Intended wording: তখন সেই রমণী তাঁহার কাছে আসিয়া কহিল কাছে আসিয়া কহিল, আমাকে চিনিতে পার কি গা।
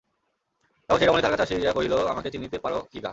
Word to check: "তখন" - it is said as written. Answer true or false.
true